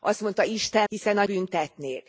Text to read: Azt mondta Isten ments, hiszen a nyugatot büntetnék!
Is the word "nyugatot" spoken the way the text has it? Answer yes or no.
no